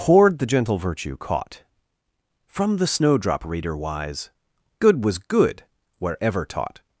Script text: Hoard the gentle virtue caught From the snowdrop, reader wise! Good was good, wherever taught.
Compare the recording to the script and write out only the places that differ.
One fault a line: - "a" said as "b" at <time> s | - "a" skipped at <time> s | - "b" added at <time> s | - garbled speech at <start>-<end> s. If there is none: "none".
none